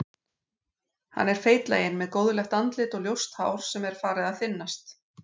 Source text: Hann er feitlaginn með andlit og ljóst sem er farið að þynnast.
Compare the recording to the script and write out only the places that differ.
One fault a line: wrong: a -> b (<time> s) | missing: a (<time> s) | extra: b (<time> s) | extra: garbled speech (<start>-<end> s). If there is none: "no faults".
extra: góðlegt (2.2 s)
extra: hár (3.4 s)